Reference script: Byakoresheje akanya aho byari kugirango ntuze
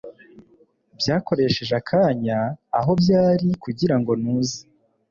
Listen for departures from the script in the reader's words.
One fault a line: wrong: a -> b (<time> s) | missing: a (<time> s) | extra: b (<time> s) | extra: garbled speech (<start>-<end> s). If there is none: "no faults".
no faults